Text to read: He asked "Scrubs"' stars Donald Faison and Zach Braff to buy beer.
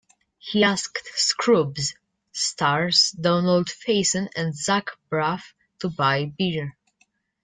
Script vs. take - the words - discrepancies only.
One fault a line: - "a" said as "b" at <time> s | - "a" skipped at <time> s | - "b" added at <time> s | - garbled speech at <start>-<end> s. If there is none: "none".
none